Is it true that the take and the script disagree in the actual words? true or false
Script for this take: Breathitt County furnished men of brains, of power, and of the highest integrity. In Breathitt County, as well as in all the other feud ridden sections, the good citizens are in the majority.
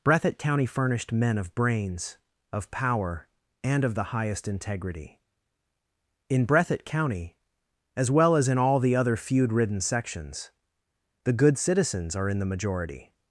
false